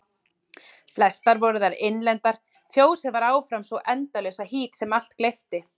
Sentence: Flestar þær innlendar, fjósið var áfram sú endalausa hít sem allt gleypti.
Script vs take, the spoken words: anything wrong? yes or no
yes